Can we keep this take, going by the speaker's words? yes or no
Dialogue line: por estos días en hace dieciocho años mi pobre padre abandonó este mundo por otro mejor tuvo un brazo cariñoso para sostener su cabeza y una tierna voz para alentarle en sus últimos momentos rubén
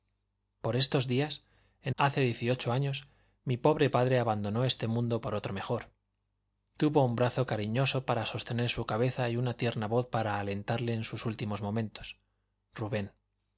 yes